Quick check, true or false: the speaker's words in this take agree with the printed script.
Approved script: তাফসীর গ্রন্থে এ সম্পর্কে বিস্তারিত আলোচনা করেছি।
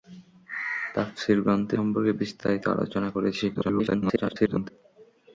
false